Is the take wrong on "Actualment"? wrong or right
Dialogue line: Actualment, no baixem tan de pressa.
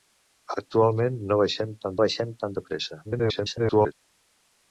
right